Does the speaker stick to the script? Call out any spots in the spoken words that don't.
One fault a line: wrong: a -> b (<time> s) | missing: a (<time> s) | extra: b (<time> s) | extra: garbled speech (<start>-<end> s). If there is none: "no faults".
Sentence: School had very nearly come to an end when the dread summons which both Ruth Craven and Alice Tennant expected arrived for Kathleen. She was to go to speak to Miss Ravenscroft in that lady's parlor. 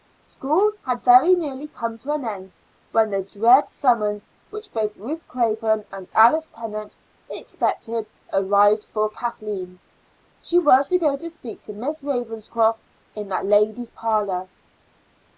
no faults